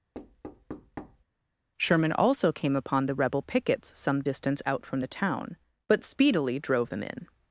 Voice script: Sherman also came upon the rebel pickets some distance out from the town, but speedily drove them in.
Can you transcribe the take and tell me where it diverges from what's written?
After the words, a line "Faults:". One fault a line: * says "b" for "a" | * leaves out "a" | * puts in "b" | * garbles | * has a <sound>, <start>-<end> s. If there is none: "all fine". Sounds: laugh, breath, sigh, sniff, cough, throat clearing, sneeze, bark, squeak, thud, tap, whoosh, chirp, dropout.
Sherman also came upon the rebel pickets some distance out from the town, but speedily drove them in.
Faults:
* has a thud, 0.1-1.2 s